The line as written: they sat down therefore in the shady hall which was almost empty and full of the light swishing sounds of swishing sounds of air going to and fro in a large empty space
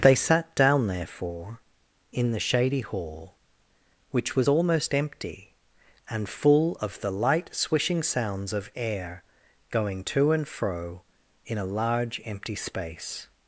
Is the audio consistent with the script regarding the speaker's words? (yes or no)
no